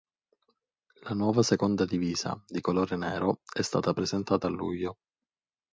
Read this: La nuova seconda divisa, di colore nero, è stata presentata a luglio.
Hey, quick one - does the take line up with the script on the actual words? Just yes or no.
yes